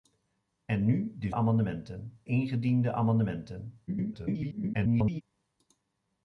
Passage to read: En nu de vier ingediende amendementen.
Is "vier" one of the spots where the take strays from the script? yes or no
yes